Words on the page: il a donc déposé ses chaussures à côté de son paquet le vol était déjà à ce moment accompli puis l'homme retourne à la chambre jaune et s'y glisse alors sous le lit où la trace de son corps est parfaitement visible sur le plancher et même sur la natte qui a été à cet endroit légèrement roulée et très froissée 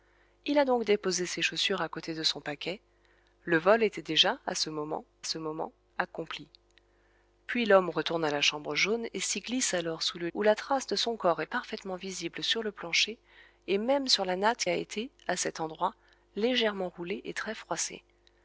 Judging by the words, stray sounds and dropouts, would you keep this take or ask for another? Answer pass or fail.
fail